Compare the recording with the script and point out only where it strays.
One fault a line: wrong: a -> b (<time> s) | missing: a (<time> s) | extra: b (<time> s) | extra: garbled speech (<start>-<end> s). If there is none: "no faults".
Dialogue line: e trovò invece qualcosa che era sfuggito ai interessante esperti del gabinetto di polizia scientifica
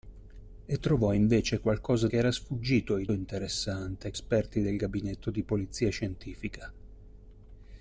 no faults